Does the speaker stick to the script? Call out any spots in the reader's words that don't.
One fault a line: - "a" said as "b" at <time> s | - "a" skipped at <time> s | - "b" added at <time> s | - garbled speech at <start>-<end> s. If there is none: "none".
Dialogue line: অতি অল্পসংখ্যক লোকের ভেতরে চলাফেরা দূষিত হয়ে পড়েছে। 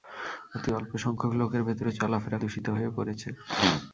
none